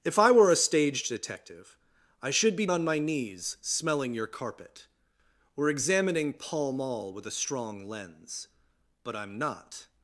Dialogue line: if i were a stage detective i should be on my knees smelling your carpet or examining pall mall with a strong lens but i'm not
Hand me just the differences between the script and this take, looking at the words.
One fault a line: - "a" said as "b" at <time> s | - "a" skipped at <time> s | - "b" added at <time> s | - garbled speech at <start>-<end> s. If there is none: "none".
none